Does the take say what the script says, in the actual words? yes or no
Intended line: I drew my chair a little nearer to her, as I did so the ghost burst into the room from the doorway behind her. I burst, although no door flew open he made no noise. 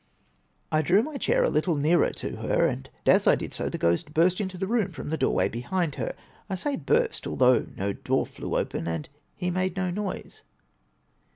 no